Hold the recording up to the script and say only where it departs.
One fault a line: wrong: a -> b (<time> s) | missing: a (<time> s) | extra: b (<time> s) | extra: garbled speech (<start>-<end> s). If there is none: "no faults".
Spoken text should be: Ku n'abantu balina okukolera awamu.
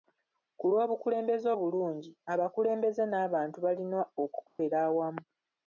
extra: lw'obukulembeze obulungi abakulembeze (0.7 s)